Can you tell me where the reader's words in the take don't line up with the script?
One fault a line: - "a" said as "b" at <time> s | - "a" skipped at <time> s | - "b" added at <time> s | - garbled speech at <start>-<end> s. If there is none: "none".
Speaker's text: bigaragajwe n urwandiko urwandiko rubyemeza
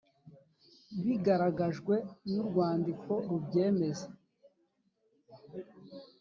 - "urwandiko" skipped at 3.1 s